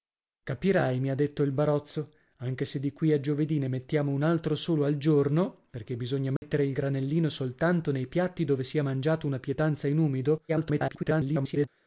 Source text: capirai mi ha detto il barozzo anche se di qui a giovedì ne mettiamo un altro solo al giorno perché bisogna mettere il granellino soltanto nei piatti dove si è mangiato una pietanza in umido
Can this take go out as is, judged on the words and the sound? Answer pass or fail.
fail